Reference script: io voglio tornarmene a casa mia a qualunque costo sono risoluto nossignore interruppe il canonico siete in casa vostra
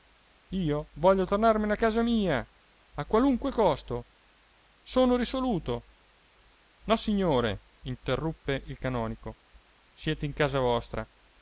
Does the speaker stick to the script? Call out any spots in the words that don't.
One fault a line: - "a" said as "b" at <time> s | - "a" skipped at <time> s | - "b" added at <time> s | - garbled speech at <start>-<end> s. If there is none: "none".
none